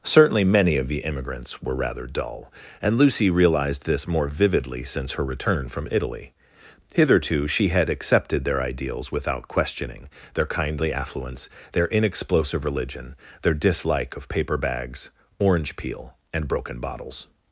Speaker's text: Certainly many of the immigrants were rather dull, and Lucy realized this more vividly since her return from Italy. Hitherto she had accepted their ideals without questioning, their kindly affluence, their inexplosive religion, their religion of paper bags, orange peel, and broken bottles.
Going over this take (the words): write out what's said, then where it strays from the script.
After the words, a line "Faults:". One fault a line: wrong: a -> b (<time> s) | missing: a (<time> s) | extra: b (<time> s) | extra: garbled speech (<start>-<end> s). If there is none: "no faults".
Certainly many of the immigrants were rather dull, and Lucy realized this more vividly since her return from Italy. Hitherto she had accepted their ideals without questioning, their kindly affluence, their inexplosive religion, their dislike of paper bags, orange peel, and broken bottles.
Faults:
wrong: religion -> dislike (13.5 s)